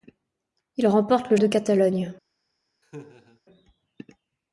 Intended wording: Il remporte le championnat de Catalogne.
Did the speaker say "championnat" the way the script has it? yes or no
no